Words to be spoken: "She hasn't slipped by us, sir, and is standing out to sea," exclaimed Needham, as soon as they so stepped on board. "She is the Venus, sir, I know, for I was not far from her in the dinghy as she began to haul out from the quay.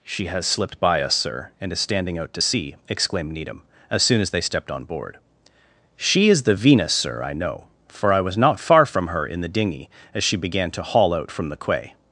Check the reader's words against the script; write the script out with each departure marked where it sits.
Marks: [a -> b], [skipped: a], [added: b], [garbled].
"She [hasn't -> has] slipped by us, sir, and is standing out to sea," exclaimed Needham, as soon as they [skipped: so] stepped on board. "She is the Venus, sir, I know, for I was not far from her in the dinghy as she began to haul out from the quay.